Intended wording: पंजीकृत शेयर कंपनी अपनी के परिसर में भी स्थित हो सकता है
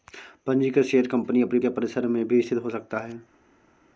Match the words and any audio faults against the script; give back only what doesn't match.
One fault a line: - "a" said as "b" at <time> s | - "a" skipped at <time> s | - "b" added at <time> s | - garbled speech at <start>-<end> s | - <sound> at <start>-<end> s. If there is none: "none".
none